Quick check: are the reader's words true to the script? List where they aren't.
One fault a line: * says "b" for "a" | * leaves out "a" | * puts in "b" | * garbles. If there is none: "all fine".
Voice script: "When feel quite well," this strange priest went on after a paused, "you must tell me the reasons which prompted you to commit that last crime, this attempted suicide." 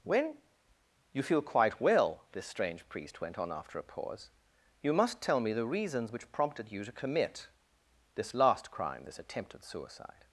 * puts in "you"
* says "pause" for "paused"
* says "this" for "that"